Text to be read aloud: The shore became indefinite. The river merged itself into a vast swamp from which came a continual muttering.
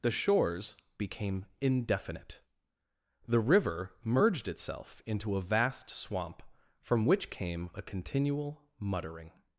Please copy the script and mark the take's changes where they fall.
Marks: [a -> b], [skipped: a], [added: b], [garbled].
The [shore -> shores] became indefinite. The river merged itself into a vast swamp from which came a continual muttering.